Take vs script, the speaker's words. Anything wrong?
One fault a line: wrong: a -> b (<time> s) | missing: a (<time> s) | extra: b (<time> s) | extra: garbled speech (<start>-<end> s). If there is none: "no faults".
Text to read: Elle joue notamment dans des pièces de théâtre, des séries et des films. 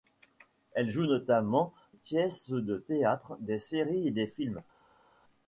missing: dans des (1.8 s)